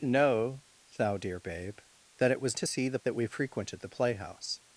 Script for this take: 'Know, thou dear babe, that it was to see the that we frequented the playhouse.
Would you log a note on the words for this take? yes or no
no